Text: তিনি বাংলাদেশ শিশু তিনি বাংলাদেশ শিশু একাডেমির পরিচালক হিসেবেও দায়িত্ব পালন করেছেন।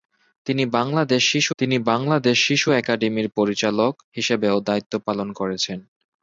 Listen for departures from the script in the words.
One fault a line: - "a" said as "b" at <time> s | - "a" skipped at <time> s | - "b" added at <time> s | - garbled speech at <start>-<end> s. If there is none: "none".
none